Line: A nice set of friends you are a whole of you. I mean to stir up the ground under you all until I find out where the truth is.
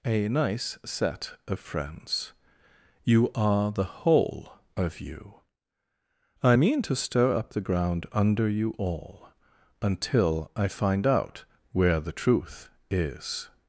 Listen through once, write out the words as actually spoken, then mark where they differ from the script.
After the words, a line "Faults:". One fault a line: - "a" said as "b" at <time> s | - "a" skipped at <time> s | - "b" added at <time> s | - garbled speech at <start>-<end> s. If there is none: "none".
A nice set of friends you are the whole of you. I mean to stir up the ground under you all until I find out where the truth is.
Faults:
- "a" said as "the" at 3.7 s